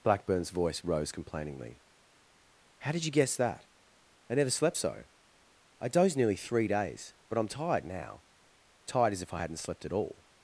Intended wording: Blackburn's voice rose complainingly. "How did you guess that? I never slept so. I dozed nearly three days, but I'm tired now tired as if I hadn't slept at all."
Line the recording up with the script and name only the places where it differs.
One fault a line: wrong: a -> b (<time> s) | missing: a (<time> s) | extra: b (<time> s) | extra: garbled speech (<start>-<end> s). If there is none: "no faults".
no faults